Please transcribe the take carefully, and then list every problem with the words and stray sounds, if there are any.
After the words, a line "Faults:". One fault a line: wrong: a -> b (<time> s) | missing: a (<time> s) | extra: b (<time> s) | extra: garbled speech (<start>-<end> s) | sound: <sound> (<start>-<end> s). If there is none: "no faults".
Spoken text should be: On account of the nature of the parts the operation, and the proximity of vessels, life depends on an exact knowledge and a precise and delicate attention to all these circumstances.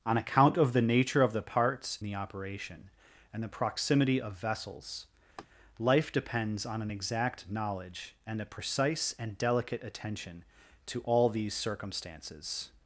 On account of the nature of the parts the operation, and the proximity of vessels, life depends on an exact knowledge and a precise and delicate attention to all these circumstances.
Faults:
sound: laugh (5.4-5.5 s)